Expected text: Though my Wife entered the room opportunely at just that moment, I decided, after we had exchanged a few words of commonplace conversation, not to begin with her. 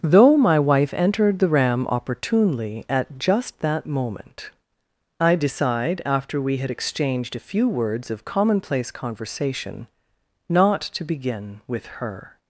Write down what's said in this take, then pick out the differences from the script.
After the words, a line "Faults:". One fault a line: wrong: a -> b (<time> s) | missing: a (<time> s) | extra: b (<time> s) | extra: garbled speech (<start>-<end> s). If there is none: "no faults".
Though my Wife entered the ram opportunely at just that moment, I decide, after we had exchanged a few words of commonplace conversation, not to begin with her.
Faults:
wrong: room -> ram (1.5 s)
wrong: decided -> decide (5.3 s)